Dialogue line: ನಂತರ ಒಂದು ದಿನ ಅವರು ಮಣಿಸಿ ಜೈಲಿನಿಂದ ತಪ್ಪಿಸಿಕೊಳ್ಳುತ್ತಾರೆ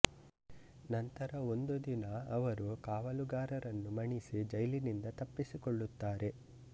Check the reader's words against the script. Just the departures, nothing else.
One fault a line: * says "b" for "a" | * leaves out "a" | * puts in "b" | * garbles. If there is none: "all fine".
* puts in "ಕಾವಲುಗಾರರನ್ನು"